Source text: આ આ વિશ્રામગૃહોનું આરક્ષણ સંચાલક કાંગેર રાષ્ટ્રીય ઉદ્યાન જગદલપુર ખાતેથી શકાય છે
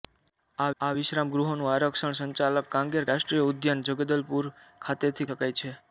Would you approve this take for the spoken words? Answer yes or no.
yes